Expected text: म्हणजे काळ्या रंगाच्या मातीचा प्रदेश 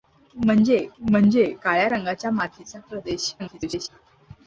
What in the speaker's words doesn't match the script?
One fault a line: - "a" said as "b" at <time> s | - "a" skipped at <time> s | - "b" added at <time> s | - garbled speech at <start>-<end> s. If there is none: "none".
- "म्हणजे" added at 1.0 s
- garbled speech at 3.4-3.9 s